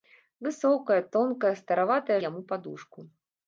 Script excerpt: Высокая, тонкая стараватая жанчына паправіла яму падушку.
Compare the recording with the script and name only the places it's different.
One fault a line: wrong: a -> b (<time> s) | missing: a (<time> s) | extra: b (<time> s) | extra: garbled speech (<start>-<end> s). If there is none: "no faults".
missing: жанчына паправіла (2.2 s)